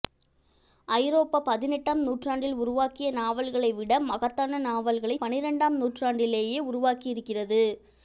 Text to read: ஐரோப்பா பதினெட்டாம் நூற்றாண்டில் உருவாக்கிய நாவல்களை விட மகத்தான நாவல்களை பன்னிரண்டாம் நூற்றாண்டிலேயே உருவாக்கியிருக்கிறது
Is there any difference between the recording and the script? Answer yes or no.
no